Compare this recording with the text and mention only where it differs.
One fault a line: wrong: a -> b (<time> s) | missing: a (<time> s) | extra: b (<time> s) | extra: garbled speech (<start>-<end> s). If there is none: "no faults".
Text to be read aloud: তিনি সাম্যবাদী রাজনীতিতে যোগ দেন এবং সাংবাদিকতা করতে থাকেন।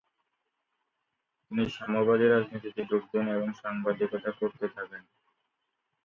no faults